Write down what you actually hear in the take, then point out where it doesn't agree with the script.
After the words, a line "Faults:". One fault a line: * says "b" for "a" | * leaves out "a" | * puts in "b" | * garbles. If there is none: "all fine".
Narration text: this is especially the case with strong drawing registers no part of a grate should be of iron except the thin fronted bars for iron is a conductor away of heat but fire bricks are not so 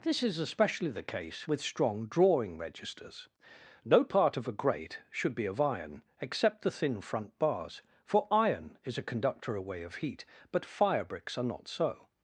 this is especially the case with strong drawing registers no part of a grate should be of iron except the thin front bars for iron is a conductor away of heat but fire bricks are not so
Faults:
* says "front" for "fronted"